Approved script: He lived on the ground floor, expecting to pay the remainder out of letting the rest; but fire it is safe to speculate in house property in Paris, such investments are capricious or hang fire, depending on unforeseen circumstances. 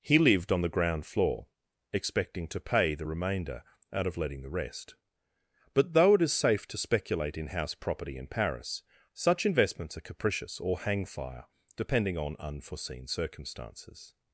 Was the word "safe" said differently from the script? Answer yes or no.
no